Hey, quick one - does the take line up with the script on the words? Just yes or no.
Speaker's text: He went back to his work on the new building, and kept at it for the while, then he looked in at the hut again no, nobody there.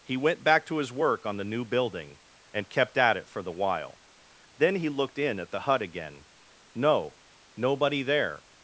yes